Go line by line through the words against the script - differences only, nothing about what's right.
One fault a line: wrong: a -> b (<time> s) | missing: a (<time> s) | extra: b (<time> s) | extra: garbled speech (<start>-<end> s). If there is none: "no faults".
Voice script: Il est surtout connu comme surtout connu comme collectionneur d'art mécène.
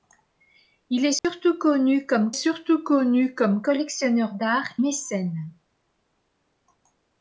no faults